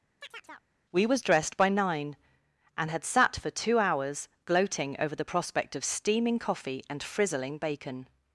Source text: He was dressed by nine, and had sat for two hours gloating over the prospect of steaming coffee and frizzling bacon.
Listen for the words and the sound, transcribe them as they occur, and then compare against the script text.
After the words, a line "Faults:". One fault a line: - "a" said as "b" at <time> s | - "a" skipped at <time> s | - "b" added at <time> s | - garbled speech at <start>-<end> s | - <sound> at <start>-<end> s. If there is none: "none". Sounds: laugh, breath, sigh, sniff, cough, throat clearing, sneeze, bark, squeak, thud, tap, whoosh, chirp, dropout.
We was dressed by nine, and had sat for two hours gloating over the prospect of steaming coffee and frizzling bacon.
Faults:
- chirp at 0.2-0.7 s
- "He" said as "We" at 0.9 s